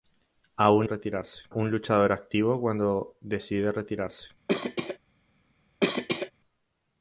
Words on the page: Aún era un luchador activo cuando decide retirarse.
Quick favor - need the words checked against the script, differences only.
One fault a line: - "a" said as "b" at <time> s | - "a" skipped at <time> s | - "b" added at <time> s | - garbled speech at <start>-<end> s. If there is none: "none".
- "era" said as "retirarse" at 0.8 s